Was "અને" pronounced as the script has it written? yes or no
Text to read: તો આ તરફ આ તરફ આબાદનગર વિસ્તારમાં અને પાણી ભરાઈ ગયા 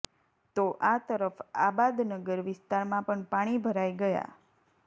no